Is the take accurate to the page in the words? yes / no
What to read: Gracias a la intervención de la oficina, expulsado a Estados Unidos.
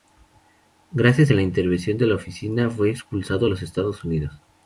no